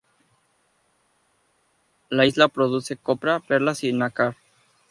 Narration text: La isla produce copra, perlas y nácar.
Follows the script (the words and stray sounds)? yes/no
yes